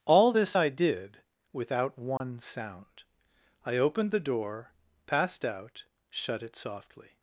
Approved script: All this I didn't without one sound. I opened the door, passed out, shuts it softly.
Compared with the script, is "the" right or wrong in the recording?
right